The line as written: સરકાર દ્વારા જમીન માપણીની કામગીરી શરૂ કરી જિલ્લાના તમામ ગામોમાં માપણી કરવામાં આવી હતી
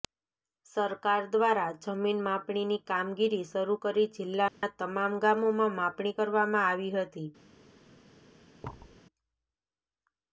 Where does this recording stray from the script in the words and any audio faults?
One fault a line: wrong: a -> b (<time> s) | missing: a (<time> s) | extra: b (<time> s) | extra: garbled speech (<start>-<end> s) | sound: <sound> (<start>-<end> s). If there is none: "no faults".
sound: dropout (4.5-4.6 s)
sound: thud (8.6-9.0 s)